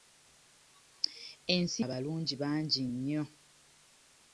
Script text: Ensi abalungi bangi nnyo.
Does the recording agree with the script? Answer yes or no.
yes